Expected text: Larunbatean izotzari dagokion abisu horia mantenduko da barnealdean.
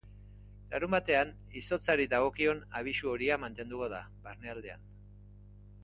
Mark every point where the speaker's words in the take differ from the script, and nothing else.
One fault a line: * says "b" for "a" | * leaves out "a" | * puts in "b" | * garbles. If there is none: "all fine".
all fine